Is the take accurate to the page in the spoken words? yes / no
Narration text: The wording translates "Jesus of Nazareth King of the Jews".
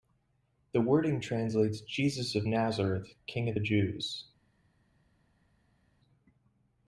yes